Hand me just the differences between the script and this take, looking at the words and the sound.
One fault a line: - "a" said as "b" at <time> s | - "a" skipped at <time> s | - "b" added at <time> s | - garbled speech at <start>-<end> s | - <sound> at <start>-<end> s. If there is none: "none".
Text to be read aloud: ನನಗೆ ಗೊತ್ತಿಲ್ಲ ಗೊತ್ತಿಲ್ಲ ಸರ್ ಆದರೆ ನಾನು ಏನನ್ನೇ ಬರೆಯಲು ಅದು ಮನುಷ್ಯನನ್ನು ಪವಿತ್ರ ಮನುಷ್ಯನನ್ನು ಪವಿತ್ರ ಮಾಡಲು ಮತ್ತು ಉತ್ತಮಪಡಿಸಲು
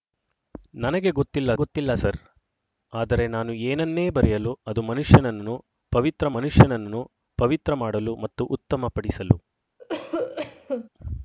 - cough at 9.8-10.9 s